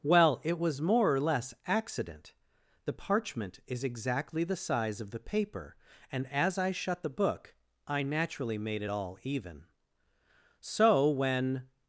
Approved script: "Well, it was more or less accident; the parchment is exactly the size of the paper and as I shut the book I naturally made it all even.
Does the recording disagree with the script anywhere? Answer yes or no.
yes